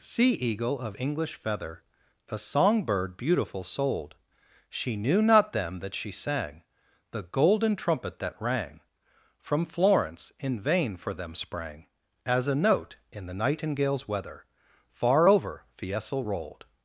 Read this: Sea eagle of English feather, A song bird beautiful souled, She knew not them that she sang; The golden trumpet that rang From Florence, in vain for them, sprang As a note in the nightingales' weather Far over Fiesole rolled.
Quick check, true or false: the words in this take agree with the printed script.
true